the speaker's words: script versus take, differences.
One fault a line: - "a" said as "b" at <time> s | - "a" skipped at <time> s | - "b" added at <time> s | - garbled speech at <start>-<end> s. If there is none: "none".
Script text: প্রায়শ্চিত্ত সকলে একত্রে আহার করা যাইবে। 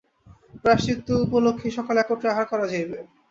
- "উপলক্ষেই" added at 1.2 s